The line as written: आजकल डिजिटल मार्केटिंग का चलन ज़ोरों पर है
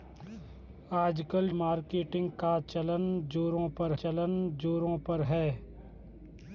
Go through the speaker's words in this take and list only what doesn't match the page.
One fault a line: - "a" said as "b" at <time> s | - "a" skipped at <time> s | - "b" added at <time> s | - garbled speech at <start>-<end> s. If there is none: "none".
- "डिजिटल" skipped at 1.5 s
- "चलन ज़ोरों पर" added at 3.9 s